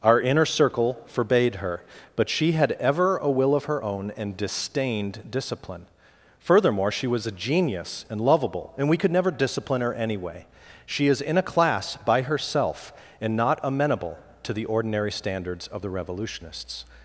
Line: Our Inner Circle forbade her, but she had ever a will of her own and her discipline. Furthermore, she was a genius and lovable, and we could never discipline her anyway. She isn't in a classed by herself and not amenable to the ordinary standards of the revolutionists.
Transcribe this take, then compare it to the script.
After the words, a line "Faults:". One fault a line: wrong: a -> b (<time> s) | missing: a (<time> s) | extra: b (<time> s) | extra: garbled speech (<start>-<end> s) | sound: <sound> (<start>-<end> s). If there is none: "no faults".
Our Inner Circle forbade her, but she had ever a will of her own and disdained discipline. Furthermore, she was a genius and lovable, and we could never discipline her anyway. She is in a class by herself and not amenable to the ordinary standards of the revolutionists.
Faults:
wrong: her -> disdained (4.4 s)
wrong: isn't -> is (11.1 s)
wrong: classed -> class (11.4 s)